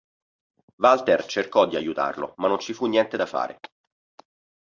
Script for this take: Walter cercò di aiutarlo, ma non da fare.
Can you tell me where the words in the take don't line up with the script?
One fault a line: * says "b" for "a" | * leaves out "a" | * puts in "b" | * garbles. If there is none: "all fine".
* puts in "ci fu niente"